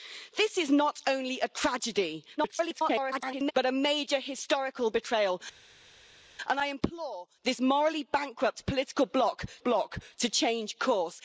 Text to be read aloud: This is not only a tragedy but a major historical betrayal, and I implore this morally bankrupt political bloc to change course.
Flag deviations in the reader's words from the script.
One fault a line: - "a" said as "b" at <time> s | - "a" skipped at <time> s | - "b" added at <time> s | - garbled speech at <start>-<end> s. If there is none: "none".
- garbled speech at 2.4-3.5 s
- "bloc" added at 9.6 s